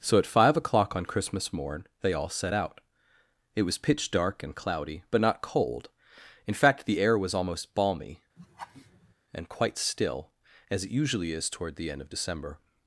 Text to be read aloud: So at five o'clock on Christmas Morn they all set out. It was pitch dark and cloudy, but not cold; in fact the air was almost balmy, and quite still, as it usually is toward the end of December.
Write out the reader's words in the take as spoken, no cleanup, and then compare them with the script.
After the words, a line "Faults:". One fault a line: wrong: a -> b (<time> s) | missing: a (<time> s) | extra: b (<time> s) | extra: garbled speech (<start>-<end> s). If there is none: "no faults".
So at five o'clock on Christmas Morn they all set out. It was pitch dark and cloudy, but not cold; in fact the air was almost balmy, and quite still, as it usually is toward the end of December.
Faults:
no faults